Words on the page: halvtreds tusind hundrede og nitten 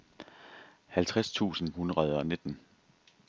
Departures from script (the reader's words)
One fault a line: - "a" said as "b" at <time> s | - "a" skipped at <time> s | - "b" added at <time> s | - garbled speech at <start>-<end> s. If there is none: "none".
none